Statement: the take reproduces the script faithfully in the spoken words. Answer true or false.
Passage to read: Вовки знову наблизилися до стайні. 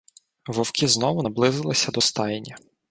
true